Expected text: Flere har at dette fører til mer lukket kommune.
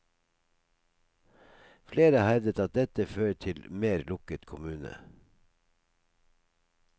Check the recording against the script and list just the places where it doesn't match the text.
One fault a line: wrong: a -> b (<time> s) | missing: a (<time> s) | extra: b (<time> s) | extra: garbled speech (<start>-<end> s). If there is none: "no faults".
extra: hevdet (2.3 s)